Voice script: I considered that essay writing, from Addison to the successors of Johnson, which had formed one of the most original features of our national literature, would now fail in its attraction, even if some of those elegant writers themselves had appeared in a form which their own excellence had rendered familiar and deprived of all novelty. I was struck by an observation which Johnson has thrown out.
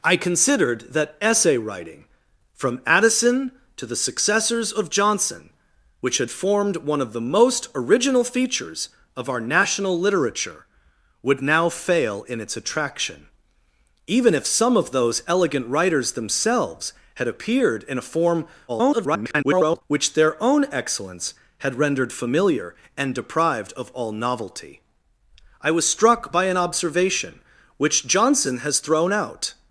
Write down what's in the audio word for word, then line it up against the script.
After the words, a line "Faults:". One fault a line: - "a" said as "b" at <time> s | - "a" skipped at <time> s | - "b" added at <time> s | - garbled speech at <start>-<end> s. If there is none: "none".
I considered that essay writing, from Addison to the successors of Johnson, which had formed one of the most original features of our national literature, would now fail in its attraction, even if some of those elegant writers themselves had appeared in a form [garbled] which their own excellence had rendered familiar and deprived of all novelty. I was struck by an observation which Johnson has thrown out.
Faults:
- garbled speech at 18.7-19.8 s